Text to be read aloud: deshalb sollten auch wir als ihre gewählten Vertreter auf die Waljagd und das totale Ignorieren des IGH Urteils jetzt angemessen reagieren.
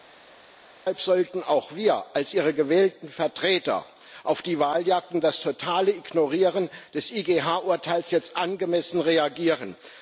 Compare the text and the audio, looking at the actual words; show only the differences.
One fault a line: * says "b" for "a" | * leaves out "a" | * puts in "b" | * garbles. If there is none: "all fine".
all fine